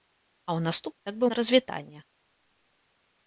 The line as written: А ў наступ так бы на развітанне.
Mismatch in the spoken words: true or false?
false